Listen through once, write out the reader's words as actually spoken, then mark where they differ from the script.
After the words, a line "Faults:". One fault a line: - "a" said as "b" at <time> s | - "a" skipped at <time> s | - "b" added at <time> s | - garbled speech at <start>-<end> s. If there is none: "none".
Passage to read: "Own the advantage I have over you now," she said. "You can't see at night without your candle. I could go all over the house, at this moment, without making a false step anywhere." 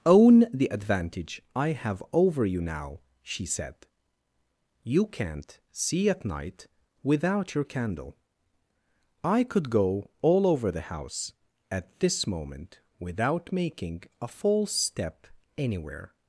"Own the advantage I have over you now," she said. "You can't see at night without your candle. I could go all over the house, at this moment, without making a false step anywhere."
Faults:
none